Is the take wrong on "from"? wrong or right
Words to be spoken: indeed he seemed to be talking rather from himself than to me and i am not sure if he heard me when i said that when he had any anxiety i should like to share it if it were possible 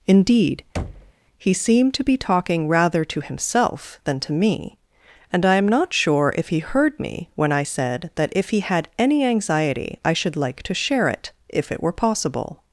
wrong